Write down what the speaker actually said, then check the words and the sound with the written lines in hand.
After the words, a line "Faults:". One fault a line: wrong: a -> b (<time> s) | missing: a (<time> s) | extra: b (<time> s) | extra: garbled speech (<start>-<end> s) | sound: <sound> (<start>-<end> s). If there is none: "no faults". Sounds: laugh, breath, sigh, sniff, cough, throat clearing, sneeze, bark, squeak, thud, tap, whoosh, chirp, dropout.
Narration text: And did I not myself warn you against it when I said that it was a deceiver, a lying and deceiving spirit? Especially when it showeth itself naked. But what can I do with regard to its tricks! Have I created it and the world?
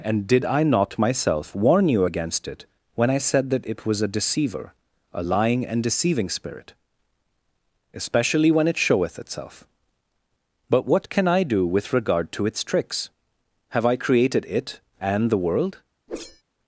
And did I not myself warn you against it when I said that it was a deceiver, a lying and deceiving spirit? Especially when it showeth itself. But what can I do with regard to its tricks! Have I created it and the world?
Faults:
missing: naked (9.7 s)
sound: whoosh (16.1-16.4 s)